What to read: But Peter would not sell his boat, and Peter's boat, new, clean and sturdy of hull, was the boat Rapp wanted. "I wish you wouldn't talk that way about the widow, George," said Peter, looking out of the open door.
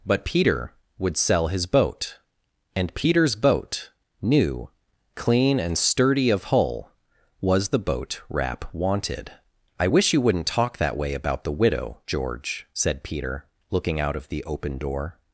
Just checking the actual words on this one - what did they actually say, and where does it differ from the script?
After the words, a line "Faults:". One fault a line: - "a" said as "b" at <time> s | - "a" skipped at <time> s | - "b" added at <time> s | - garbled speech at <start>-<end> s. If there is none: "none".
But Peter would sell his boat, and Peter's boat, new, clean and sturdy of hull, was the boat Rapp wanted. "I wish you wouldn't talk that way about the widow, George," said Peter, looking out of the open door.
Faults:
- "not" skipped at 1.2 s